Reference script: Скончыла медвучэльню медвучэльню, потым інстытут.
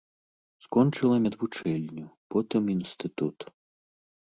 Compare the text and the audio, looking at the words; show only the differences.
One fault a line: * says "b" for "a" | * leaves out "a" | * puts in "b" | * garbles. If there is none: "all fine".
* leaves out "медвучэльню"